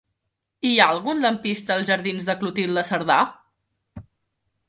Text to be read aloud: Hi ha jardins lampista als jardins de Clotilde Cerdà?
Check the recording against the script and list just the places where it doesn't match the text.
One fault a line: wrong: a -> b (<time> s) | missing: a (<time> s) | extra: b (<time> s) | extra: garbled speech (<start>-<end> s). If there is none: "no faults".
wrong: jardins -> algun (0.9 s)